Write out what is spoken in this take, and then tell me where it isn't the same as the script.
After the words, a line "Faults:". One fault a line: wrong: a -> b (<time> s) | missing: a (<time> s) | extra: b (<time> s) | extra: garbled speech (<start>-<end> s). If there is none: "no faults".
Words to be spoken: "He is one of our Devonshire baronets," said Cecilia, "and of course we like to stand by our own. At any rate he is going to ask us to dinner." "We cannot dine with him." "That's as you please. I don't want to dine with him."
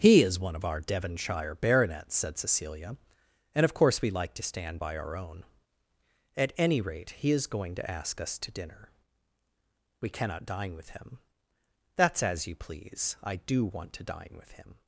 "He is one of our Devonshire baronets," said Cecilia, "and of course we like to stand by our own. At any rate he is going to ask us to dinner." "We cannot dine with him." "That's as you please. I do want to dine with him."
Faults:
wrong: don't -> do (13.3 s)